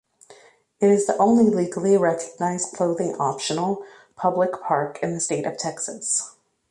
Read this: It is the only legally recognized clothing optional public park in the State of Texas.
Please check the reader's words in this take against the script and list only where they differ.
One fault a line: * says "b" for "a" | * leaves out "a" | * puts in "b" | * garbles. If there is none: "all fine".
all fine